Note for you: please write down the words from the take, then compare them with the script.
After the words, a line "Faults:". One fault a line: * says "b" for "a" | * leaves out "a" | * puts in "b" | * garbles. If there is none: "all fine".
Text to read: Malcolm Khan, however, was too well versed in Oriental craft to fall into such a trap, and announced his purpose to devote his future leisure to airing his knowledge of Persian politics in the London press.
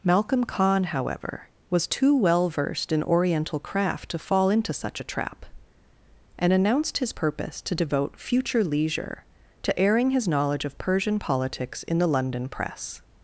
Malcolm Khan, however, was too well versed in Oriental craft to fall into such a trap, and announced his purpose to devote future leisure to airing his knowledge of Persian politics in the London press.
Faults:
* leaves out "his"